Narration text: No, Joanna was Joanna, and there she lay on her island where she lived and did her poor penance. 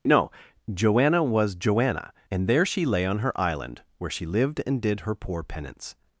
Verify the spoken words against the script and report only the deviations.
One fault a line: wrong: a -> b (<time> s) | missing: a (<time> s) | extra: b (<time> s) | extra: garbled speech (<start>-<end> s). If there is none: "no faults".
no faults